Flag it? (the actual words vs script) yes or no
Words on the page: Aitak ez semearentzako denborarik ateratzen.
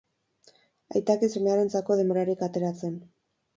no